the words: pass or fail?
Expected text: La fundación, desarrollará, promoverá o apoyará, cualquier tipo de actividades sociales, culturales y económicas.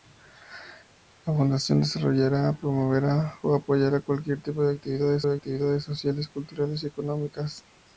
fail